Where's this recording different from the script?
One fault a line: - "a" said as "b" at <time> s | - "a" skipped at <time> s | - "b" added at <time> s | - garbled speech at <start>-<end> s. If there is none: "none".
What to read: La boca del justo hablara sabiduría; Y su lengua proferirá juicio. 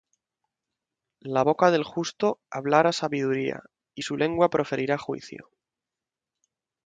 none